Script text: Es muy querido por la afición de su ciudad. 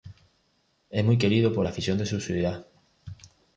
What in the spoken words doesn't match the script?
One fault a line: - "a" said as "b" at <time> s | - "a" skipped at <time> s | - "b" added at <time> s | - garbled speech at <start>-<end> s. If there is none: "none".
none